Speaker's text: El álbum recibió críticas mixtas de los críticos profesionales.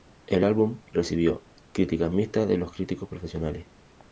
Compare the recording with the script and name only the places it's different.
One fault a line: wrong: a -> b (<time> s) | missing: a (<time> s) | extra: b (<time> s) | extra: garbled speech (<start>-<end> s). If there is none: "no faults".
no faults